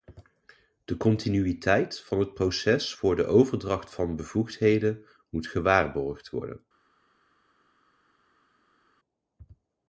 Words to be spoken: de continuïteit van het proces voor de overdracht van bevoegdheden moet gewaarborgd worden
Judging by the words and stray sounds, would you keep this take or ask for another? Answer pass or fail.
pass